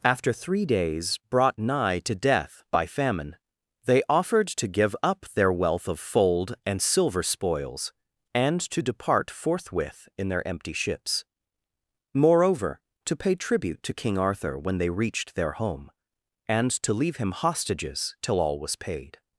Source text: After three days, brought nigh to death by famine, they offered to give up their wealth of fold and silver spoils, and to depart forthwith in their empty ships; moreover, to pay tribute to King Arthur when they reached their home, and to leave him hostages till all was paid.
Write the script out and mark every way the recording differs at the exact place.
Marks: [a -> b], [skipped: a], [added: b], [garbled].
After three days, brought nigh to death by famine, they offered to give up their wealth of fold and silver spoils, and to depart forthwith in their empty ships; moreover, to pay tribute to King Arthur when they reached their home, and to leave him hostages till all was paid.